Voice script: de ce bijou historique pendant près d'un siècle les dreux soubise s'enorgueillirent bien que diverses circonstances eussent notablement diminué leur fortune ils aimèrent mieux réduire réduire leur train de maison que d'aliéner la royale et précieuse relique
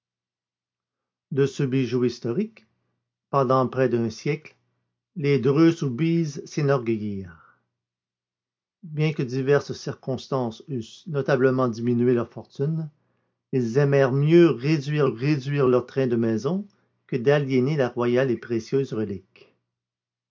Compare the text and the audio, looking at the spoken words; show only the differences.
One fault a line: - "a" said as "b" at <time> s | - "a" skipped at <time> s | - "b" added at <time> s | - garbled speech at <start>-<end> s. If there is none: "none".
none